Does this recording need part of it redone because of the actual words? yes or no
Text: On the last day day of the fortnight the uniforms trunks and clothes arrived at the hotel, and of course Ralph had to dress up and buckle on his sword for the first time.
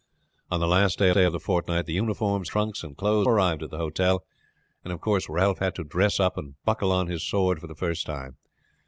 no